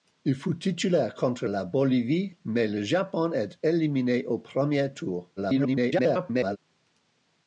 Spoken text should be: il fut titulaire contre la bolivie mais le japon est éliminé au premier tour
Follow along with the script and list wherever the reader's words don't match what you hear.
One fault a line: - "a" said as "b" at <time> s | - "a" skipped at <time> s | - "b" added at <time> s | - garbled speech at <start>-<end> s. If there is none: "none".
- garbled speech at 5.4-6.6 s